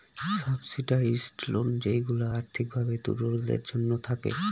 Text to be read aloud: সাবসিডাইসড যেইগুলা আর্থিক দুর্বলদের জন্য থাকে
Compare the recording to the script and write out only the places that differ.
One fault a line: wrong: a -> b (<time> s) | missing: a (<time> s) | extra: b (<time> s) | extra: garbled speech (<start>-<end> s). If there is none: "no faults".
extra: লোন (1.5 s)
extra: ভাবে (2.7 s)